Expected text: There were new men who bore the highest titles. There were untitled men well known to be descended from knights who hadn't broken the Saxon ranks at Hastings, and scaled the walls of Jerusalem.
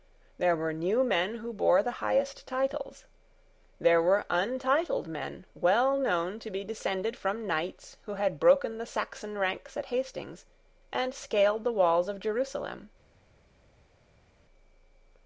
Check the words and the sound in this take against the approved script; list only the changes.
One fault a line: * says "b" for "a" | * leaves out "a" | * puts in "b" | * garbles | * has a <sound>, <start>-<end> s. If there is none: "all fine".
* says "had" for "hadn't"